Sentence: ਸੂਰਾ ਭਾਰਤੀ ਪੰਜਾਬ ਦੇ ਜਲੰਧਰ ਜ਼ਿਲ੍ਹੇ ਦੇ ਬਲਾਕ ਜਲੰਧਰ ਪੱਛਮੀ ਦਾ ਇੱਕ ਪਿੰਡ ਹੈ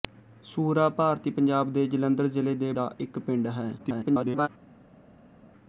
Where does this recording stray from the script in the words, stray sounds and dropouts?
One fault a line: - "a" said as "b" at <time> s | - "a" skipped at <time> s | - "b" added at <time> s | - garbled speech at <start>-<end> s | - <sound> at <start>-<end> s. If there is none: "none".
- "ਬਲਾਕ ਜਲੰਧਰ ਪੱਛਮੀ" skipped at 2.7 s
- garbled speech at 3.8-4.5 s